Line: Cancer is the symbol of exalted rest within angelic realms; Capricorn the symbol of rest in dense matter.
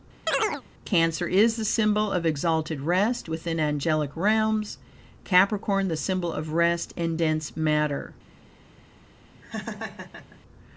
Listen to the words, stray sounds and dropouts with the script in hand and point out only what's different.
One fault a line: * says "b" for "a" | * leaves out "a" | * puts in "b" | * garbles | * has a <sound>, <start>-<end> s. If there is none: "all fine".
* has a chirp, 0.3-0.6 s
* has a laugh, 9.4-10.4 s